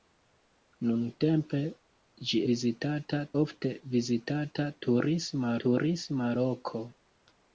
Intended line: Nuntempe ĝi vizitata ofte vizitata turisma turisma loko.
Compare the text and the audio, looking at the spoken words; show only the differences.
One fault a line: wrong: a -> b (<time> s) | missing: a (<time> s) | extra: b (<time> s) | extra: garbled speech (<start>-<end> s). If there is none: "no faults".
no faults